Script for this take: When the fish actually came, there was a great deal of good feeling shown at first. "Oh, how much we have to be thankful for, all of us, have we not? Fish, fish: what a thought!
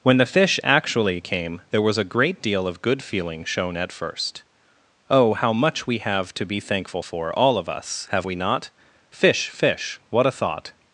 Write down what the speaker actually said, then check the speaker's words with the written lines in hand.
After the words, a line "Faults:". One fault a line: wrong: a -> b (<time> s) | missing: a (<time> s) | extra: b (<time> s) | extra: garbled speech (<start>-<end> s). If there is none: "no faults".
When the fish actually came, there was a great deal of good feeling shown at first. "Oh, how much we have to be thankful for, all of us, have we not? Fish, fish: what a thought!
Faults:
no faults